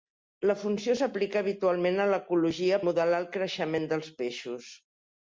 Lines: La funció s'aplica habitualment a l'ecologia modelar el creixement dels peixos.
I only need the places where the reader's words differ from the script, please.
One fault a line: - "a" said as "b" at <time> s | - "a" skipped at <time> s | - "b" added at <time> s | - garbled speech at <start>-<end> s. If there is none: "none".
none